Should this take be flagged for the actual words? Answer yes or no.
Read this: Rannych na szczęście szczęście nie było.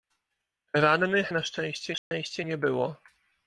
no